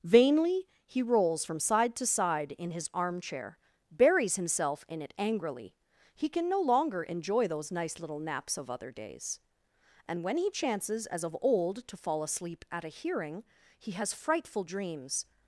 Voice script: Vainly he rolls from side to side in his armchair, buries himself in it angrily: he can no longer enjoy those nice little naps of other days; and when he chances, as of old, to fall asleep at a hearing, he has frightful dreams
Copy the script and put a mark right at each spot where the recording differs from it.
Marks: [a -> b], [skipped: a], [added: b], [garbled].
Vainly he rolls from side to side in his armchair, buries himself in it angrily: he can no longer enjoy those nice little naps of other days; and when he chances, as of old, to fall asleep at a hearing, he has frightful dreams